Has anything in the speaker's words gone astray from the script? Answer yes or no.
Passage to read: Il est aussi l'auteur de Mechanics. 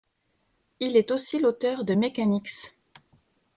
no